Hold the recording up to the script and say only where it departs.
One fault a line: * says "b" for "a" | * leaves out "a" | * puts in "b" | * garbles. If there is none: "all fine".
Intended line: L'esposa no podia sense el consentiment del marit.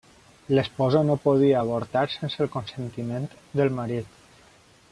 * puts in "avortar"